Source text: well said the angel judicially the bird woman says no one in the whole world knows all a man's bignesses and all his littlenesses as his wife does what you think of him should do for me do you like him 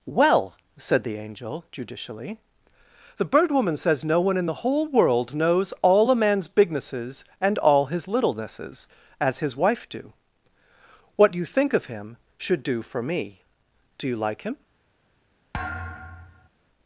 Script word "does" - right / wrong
wrong